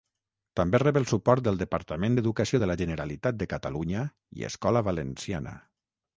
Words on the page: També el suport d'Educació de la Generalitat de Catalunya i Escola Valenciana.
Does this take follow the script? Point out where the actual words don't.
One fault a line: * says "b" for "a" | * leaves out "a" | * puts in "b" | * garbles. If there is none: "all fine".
* puts in "rep"
* puts in "del Departament"